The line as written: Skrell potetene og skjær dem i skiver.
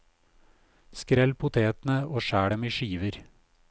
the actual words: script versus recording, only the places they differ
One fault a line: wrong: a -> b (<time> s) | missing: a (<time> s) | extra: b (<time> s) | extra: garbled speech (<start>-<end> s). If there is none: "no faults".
no faults